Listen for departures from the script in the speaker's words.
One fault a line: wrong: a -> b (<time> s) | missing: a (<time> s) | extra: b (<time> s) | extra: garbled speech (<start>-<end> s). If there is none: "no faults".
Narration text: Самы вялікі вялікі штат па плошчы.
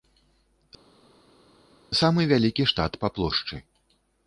missing: вялікі (2.7 s)